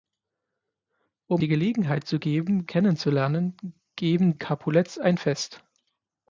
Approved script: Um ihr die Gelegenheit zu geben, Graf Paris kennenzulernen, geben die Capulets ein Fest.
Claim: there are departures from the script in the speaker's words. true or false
true